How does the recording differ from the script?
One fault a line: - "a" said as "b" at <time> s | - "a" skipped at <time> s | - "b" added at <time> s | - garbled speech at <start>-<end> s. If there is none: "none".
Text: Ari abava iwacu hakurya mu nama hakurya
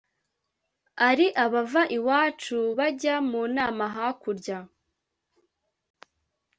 - "hakurya" said as "bajya" at 2.8 s